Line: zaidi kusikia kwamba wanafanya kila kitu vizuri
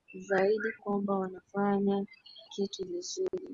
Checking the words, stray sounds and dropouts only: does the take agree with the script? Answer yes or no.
no